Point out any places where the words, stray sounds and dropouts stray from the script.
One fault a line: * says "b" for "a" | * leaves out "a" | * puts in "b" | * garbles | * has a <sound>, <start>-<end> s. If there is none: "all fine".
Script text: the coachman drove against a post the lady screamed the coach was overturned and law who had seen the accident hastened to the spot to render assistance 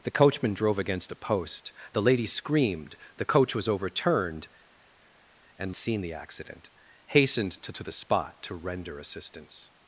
* leaves out "law who had"
* puts in "to"